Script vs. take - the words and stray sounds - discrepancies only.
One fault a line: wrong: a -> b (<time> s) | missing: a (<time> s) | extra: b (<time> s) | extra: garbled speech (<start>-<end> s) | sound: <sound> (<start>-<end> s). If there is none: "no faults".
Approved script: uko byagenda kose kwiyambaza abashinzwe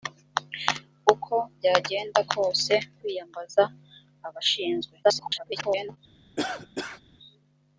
extra: garbled speech (5.0-6.0 s)
sound: cough (6.4-7.0 s)